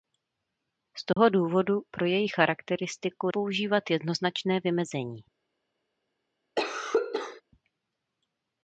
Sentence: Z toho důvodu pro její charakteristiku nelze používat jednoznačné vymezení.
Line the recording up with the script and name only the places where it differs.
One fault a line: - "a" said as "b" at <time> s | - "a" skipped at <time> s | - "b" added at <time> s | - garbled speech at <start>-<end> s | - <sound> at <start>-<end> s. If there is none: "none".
- dropout at 1.1-1.2 s
- "nelze" skipped at 3.3 s
- cough at 6.6-7.4 s